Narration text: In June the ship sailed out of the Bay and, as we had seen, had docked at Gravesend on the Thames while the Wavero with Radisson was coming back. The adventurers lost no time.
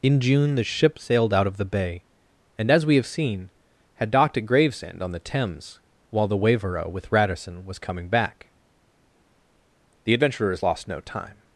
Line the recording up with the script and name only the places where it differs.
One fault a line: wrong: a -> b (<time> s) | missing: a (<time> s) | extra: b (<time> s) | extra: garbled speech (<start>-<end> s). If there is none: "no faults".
wrong: had -> have (3.0 s)